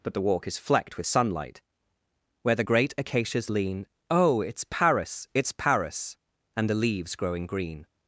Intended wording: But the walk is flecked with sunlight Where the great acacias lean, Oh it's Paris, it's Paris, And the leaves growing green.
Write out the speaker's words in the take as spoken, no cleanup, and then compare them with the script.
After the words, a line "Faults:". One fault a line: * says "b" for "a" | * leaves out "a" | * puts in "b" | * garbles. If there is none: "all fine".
But the walk is flecked with sunlight Where the great acacias lean, Oh it's Paris, it's Paris, And the leaves growing green.
Faults:
all fine